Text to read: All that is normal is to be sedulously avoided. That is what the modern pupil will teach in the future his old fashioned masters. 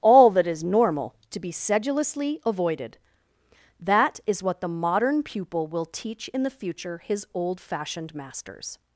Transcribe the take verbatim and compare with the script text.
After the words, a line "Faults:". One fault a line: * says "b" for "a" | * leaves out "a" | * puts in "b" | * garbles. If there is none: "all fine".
All that is normal to be sedulously avoided. That is what the modern pupil will teach in the future his old fashioned masters.
Faults:
* leaves out "is"